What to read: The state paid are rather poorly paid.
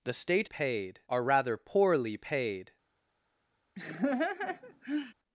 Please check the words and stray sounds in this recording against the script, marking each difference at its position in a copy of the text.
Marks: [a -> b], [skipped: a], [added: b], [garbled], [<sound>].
The state paid are rather poorly paid. [laugh]